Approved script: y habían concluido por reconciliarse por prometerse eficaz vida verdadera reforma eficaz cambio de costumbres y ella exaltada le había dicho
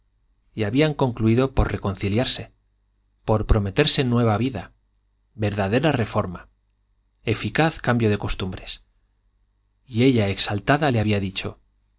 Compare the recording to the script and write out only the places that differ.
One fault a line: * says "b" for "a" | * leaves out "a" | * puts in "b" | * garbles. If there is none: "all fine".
* says "nueva" for "eficaz"